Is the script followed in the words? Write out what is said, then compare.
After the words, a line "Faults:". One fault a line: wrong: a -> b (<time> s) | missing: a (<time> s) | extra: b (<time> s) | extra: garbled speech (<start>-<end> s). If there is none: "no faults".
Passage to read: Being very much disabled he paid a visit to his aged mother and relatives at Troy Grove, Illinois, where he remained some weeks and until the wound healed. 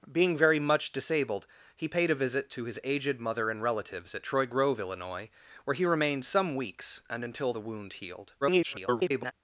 Being very much disabled he paid a visit to his aged mother and relatives at Troy Grove, Illinois, where he remained some weeks and until the wound healed. [garbled]
Faults:
extra: garbled speech (8.4-9.3 s)